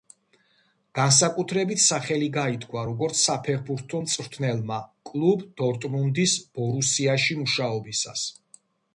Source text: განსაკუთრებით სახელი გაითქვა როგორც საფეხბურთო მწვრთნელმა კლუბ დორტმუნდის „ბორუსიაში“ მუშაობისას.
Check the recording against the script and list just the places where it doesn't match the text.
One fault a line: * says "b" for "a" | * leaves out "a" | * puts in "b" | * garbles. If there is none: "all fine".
all fine